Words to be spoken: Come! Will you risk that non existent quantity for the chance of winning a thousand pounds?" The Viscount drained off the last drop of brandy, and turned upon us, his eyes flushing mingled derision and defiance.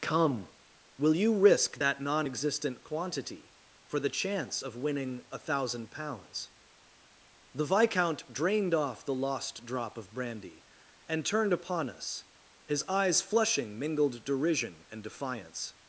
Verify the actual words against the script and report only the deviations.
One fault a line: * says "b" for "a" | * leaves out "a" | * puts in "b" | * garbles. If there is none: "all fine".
* says "lost" for "last"